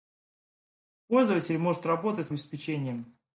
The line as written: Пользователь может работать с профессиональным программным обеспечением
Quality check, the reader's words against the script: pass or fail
fail